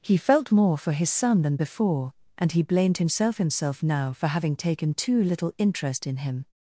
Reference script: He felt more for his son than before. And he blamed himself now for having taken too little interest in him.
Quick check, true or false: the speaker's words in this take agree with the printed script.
false